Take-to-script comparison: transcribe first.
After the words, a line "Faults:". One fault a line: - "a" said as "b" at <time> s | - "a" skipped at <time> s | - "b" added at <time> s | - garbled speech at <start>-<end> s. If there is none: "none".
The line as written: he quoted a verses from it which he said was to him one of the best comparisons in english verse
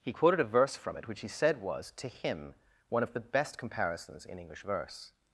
he quoted a verse from it which he said was to him one of the best comparisons in english verse
Faults:
- "verses" said as "verse" at 0.5 s